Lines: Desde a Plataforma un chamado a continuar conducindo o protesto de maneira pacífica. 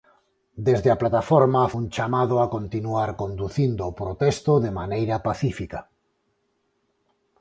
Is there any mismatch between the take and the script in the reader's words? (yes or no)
no